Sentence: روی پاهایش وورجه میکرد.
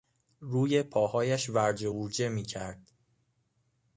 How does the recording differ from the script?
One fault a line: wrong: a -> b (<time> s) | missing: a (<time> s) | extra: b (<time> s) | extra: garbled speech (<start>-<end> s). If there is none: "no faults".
extra: ورجه (1.5 s)